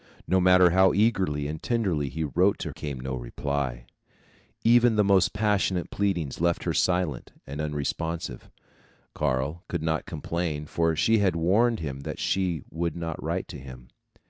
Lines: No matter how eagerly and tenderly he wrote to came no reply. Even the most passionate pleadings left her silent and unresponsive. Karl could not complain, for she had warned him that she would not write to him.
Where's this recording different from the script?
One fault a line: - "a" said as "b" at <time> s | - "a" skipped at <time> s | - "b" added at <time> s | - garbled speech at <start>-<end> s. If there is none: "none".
none